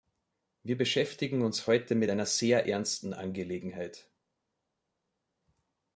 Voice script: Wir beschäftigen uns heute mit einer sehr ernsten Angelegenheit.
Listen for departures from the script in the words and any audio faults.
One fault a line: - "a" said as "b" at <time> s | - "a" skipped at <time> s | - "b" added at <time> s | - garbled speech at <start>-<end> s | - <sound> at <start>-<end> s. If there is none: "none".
none